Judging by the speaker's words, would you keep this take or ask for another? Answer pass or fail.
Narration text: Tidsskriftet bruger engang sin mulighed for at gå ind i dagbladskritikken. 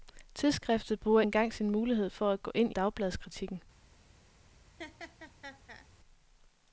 pass